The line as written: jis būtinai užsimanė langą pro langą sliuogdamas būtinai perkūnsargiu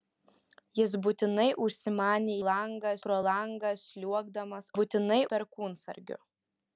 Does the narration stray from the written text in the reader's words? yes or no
no